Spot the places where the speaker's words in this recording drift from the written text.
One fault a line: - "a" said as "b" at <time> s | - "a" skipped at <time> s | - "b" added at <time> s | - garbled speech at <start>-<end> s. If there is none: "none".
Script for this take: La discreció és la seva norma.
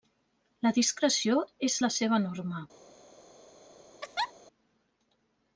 none